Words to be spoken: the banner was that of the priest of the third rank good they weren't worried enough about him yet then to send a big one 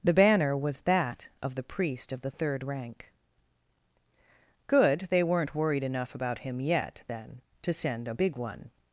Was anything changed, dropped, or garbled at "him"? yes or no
no